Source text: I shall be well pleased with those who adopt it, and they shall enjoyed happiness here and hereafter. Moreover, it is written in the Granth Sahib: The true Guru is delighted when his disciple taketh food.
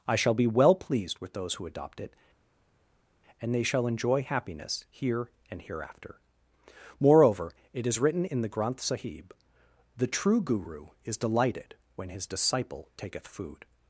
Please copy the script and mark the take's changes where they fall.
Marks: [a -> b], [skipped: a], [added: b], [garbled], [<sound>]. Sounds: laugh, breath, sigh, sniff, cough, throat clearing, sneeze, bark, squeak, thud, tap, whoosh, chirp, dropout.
I shall be well pleased with those who adopt it, and they shall [enjoyed -> enjoy] happiness here and hereafter. Moreover, it is written in the Granth Sahib: The true Guru is delighted when his disciple taketh food.